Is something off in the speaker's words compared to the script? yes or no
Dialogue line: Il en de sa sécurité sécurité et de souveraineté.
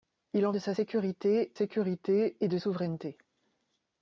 no